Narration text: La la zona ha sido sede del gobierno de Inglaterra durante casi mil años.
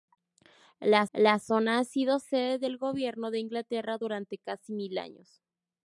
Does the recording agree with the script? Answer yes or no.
yes